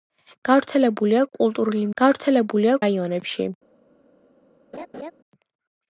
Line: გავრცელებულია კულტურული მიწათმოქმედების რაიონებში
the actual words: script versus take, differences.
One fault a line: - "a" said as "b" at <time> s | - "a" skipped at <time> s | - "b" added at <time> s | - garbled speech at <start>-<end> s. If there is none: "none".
- "მიწათმოქმედების" said as "გავრცელებულია" at 2.0 s